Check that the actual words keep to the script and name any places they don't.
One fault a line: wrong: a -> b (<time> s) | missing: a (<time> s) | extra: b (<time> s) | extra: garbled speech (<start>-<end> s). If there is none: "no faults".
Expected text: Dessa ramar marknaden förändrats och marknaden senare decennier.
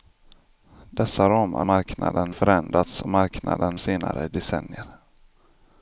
no faults